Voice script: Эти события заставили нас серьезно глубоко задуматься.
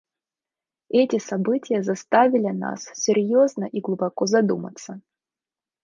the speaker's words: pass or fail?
fail